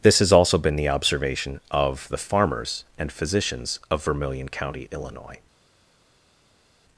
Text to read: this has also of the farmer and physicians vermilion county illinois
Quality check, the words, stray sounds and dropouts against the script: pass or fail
fail